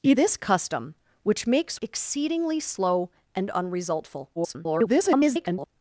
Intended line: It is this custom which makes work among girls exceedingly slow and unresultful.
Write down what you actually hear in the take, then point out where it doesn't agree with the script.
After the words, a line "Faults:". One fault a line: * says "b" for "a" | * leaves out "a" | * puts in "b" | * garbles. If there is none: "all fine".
It this custom which makes exceedingly slow and unresultful. [garbled]
Faults:
* leaves out "is"
* leaves out "work among girls"
* garbles